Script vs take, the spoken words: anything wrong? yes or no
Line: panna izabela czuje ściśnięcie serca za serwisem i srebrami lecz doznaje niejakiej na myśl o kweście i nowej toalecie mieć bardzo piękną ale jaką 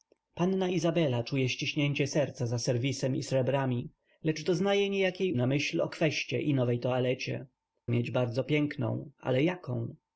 no